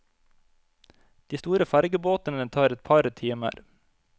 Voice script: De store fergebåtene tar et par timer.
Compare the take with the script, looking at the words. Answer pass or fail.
pass